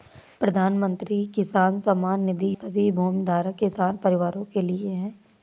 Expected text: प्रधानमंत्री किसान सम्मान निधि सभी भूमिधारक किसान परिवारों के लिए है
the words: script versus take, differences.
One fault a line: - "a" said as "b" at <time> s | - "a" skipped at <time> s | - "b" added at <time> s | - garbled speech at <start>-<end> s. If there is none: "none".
none